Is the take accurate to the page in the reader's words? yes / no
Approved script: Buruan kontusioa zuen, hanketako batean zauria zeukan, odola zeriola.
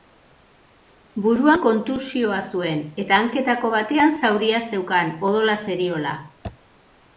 no